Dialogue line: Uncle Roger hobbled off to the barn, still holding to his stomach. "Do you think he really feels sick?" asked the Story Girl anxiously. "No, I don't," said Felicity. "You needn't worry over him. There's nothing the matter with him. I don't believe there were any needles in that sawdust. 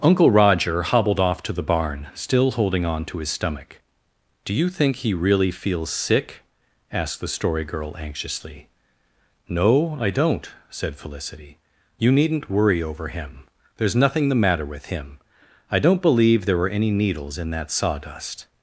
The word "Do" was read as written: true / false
true